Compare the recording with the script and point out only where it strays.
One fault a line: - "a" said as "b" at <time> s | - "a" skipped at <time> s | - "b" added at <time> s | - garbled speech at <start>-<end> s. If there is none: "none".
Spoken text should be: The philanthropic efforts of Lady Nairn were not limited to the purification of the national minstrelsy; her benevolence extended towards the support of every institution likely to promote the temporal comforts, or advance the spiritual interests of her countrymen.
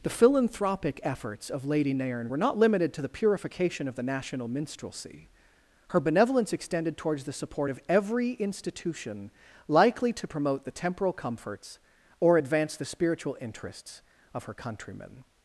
none